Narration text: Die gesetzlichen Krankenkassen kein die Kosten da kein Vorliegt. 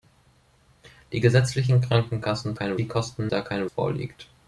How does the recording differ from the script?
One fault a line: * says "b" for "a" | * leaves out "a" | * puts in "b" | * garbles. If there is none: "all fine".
all fine